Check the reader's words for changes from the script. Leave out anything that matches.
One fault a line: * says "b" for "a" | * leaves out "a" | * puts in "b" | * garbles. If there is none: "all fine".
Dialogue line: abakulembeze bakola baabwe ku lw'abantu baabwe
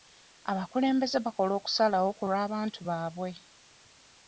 * says "okusalawo" for "baabwe"